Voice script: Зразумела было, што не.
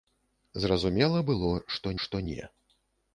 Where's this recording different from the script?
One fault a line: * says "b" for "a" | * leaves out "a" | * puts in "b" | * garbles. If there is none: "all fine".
* puts in "што"